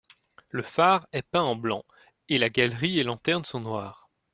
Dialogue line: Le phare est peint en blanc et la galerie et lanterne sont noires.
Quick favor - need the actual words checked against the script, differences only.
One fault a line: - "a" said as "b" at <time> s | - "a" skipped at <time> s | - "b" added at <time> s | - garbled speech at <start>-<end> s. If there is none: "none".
none